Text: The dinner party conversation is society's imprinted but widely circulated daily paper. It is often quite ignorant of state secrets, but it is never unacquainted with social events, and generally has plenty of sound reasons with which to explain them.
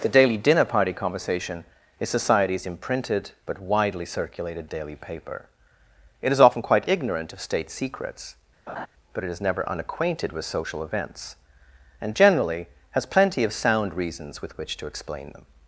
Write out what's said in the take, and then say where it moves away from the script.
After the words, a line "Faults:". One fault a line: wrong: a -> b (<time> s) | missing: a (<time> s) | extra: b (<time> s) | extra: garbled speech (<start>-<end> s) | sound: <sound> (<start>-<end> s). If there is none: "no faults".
The daily dinner party conversation is society's imprinted but widely circulated daily paper. It is often quite ignorant of state secrets, but it is never unacquainted with social events, and generally has plenty of sound reasons with which to explain them.
Faults:
extra: daily (0.1 s)
sound: laugh (8.7-8.9 s)